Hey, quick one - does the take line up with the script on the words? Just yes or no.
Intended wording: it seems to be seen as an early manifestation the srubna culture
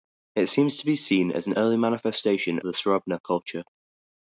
yes